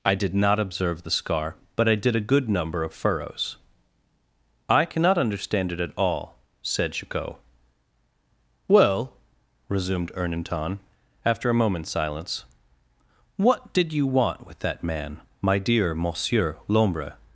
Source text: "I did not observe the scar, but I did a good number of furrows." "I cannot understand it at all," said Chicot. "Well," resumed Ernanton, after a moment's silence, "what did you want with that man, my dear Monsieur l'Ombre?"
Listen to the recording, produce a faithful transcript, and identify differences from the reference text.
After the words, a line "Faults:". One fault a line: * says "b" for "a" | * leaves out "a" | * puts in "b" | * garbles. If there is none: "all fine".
"I did not observe the scar, but I did a good number of furrows." "I cannot understand it at all," said Chicot. "Well," resumed Ernanton, after a moment's silence, "what did you want with that man, my dear Monsieur l'Ombre?"
Faults:
all fine